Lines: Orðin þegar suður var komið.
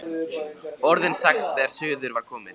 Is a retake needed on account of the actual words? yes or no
yes